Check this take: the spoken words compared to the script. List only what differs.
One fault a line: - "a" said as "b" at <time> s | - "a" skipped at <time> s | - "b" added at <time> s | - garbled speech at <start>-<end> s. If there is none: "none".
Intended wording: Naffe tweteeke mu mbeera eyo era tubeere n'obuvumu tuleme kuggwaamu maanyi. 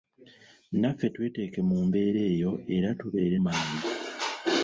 - "n'obuvumu tuleme kuggwaamu" skipped at 3.4 s